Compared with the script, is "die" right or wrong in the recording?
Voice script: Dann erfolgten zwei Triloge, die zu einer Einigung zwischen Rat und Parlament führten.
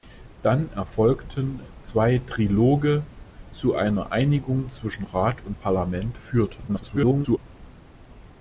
wrong